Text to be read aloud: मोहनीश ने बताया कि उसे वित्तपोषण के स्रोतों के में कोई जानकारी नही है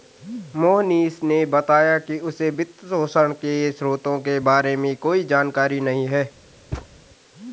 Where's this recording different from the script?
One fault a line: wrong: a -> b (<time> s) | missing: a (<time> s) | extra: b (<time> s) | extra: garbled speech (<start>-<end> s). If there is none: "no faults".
extra: बारे (4.4 s)